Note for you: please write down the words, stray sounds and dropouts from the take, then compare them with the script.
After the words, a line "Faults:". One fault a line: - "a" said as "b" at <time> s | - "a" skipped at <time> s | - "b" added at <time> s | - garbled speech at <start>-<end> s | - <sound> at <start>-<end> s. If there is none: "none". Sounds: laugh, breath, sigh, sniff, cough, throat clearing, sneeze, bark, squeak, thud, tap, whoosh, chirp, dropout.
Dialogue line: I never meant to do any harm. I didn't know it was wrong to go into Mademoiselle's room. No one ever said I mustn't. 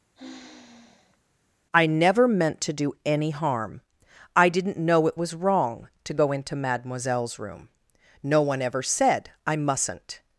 I never meant to do any harm. I didn't know it was wrong to go into Mademoiselle's room. No one ever said I mustn't.
Faults:
- sigh at 0.1-1.2 s